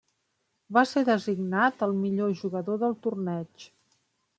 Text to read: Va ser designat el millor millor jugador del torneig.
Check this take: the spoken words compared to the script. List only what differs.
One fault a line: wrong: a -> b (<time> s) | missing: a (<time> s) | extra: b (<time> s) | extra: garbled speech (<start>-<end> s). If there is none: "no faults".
missing: millor (2.4 s)